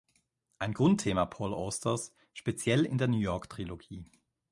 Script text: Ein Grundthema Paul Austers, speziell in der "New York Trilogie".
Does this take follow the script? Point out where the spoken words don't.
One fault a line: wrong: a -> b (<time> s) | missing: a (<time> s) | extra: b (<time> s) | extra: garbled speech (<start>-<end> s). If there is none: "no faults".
no faults